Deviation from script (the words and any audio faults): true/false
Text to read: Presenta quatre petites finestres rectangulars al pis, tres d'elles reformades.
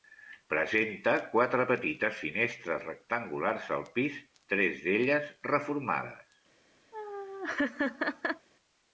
true